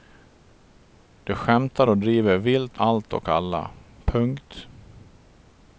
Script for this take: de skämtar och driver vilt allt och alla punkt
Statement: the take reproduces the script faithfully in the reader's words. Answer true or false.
true